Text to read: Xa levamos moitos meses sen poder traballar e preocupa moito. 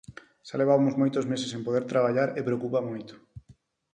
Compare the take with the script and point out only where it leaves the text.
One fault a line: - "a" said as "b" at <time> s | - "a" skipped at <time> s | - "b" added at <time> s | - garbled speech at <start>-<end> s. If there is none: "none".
none